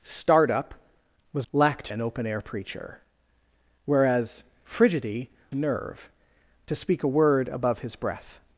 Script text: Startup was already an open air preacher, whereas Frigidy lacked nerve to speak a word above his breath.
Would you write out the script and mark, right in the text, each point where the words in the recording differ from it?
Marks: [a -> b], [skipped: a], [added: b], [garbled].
Startup was [already -> lacked] an open air preacher, whereas Frigidy [skipped: lacked] nerve to speak a word above his breath.